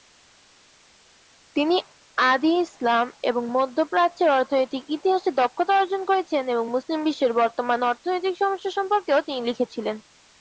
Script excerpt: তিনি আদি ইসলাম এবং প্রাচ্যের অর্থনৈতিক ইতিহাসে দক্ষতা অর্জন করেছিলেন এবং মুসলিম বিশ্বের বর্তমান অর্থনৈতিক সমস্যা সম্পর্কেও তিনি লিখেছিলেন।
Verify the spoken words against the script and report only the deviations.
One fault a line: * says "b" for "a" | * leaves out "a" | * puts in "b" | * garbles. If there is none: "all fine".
* puts in "মধ্য"